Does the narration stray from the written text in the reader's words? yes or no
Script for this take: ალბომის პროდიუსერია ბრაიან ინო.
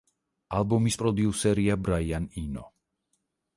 no